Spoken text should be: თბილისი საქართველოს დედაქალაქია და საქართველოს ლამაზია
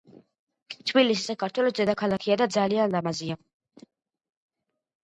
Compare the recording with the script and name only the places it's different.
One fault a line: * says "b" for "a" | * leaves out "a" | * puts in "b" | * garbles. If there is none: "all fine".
* says "ძალიან" for "საქართველოს"